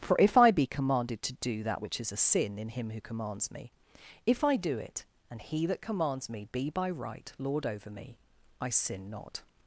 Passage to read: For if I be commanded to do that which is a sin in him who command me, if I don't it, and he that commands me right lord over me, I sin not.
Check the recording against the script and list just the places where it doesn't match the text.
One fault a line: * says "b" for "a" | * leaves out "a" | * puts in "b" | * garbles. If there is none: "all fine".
* says "commands" for "command"
* says "do" for "don't"
* puts in "be by"